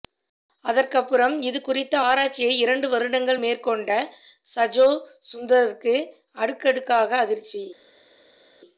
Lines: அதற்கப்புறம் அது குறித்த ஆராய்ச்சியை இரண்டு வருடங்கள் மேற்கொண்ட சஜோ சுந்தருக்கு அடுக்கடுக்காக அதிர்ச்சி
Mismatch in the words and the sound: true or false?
true